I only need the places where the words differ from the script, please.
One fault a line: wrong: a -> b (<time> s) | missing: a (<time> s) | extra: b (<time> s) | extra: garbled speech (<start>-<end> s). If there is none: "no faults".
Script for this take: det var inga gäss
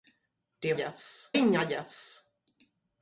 wrong: var -> gäss (0.7 s)